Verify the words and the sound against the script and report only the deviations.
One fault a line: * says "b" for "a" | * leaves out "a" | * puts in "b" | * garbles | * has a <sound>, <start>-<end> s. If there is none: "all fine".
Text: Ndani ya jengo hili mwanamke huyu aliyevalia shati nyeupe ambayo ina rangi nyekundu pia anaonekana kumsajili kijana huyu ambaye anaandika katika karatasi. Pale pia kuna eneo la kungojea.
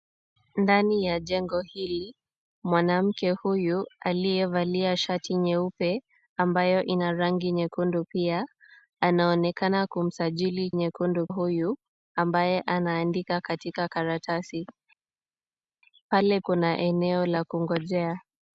* says "nyekundu" for "kijana"
* leaves out "pia"